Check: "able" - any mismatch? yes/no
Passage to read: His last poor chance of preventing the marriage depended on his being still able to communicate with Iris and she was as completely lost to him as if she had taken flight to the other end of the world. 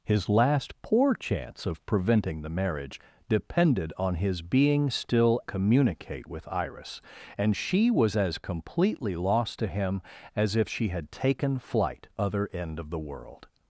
yes